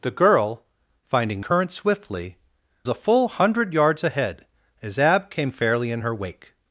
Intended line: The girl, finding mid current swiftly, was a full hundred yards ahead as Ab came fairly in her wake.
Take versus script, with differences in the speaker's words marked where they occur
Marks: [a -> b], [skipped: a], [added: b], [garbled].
The girl, finding [skipped: mid] current swiftly, [skipped: was] a full hundred yards ahead as Ab came fairly in her wake.